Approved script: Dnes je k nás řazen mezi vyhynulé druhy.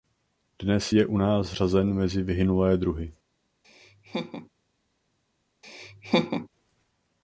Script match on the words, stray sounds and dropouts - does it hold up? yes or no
no